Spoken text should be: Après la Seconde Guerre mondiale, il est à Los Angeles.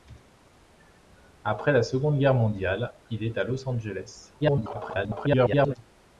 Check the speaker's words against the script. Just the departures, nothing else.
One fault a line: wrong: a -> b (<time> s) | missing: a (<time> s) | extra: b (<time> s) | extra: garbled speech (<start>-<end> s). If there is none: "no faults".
extra: garbled speech (4.4-5.8 s)